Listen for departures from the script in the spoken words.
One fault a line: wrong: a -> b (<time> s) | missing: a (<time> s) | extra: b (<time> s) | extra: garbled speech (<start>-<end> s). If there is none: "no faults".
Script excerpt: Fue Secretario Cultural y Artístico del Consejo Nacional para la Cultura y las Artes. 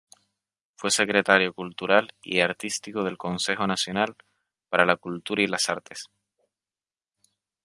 no faults